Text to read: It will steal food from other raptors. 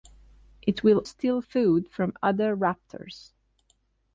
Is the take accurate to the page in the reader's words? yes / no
yes